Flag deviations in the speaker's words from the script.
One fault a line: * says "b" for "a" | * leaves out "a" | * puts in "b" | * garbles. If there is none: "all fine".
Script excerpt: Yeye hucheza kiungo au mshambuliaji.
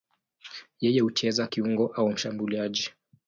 all fine